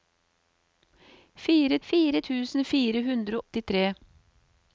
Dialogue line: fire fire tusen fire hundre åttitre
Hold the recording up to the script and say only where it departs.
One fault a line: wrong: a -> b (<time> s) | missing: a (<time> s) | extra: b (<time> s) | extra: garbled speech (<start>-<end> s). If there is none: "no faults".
no faults